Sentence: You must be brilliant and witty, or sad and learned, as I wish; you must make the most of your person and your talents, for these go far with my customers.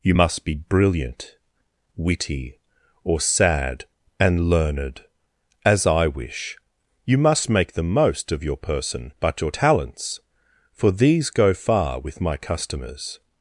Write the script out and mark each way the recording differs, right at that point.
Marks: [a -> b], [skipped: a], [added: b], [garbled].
You must be brilliant [skipped: and] witty, or sad and learned, as I wish; you must make the most of your person [and -> but] your talents, for these go far with my customers.